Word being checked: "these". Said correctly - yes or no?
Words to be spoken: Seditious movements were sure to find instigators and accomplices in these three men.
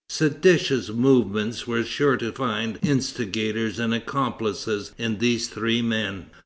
yes